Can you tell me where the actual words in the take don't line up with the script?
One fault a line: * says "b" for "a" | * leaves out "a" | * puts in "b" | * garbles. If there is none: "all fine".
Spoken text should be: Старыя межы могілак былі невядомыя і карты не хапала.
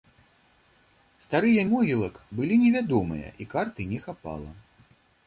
* leaves out "межы"